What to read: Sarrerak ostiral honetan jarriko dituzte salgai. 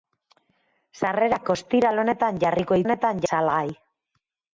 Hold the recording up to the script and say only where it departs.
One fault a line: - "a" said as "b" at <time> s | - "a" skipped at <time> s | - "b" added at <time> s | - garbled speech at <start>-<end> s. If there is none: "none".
- "dituzte" said as "honetan" at 2.9 s